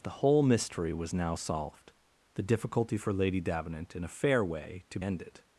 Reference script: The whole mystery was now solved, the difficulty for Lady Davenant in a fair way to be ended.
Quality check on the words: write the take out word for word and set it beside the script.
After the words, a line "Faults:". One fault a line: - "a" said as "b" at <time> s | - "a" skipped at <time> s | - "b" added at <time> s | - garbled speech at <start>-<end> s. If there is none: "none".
The whole mystery was now solved, the difficulty for Lady Davenant in a fair way to ended.
Faults:
- "be" skipped at 5.0 s